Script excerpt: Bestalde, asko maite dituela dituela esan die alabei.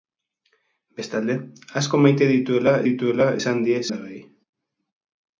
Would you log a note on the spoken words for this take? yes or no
no